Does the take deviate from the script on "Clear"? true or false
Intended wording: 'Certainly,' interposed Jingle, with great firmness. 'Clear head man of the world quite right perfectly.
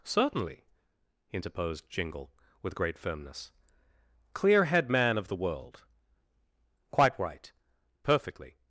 false